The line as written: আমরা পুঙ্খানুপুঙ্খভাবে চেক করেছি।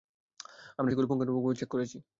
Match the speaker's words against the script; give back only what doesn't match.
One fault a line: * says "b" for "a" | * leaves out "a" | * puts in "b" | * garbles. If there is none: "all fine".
* puts in "সেগুলো"